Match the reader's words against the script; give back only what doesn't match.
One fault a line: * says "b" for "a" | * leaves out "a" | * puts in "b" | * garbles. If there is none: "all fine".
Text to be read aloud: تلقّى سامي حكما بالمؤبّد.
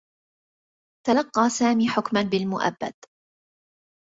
all fine